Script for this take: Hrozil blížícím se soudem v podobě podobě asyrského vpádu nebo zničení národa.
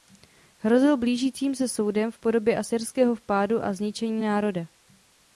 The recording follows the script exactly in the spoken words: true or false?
false